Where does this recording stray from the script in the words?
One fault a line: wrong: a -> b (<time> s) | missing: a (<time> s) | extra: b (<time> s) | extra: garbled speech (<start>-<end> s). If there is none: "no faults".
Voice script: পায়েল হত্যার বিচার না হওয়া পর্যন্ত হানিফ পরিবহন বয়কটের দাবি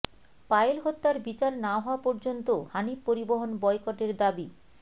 no faults